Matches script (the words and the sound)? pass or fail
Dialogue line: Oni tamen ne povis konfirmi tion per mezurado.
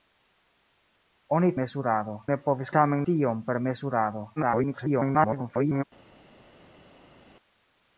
fail